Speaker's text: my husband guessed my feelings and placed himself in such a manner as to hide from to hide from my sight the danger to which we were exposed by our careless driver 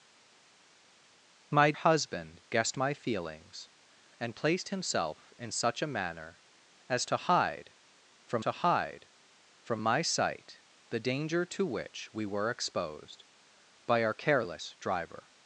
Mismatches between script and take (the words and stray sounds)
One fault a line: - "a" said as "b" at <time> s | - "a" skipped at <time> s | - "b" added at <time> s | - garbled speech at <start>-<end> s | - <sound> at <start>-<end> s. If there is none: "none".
none